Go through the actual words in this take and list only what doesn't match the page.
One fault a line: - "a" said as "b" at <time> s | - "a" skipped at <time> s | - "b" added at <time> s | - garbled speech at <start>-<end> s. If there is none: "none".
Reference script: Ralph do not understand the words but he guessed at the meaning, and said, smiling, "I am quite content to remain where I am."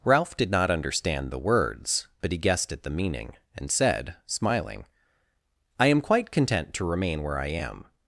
- "do" said as "did" at 0.3 s